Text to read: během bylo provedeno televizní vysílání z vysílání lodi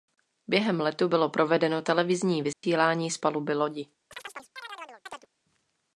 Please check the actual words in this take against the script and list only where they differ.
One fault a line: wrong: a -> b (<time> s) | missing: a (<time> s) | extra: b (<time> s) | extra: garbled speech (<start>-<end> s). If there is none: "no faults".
extra: letu (0.8 s)
wrong: vysílání -> paluby (3.2 s)